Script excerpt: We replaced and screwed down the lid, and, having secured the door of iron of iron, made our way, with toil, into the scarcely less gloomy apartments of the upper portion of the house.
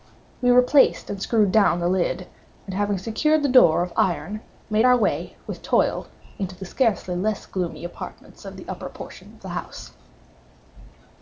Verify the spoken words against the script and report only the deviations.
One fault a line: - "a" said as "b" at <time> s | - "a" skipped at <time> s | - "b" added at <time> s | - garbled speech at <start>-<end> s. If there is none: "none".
- "of iron" skipped at 4.4 s